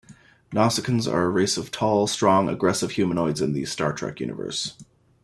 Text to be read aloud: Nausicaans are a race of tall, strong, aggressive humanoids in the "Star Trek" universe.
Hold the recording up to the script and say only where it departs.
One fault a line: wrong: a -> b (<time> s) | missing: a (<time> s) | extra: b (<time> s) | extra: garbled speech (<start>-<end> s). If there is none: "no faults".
no faults